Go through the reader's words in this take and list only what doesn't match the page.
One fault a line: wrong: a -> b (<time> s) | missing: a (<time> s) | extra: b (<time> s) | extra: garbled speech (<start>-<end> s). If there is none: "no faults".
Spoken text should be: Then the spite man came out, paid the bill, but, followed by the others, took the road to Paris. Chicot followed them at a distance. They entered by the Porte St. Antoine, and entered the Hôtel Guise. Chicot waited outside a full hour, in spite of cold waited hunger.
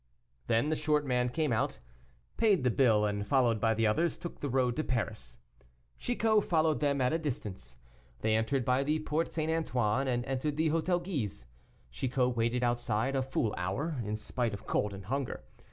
wrong: spite -> short (0.8 s)
wrong: but -> and (3.0 s)
wrong: waited -> and (14.9 s)